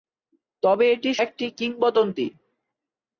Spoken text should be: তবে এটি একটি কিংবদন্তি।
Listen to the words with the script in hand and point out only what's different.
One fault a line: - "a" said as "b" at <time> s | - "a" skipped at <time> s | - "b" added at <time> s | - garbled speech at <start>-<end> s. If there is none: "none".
none